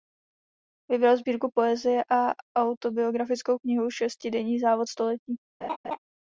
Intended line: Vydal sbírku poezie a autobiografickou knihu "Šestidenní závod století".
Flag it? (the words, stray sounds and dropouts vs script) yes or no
yes